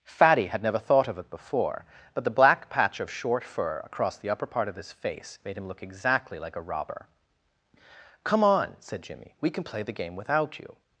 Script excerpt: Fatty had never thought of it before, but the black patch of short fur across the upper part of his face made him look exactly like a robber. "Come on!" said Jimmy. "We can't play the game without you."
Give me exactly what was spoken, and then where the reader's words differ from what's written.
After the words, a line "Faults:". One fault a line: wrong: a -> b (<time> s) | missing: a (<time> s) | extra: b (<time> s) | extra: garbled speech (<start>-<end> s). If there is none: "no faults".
Fatty had never thought of it before, but the black patch of short fur across the upper part of his face made him look exactly like a robber. "Come on!" said Jimmy. "We can play the game without you."
Faults:
wrong: can't -> can (9.5 s)